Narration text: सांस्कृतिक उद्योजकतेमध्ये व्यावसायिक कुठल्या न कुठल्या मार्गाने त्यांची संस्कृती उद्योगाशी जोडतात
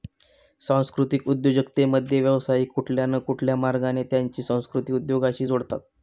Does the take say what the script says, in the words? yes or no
yes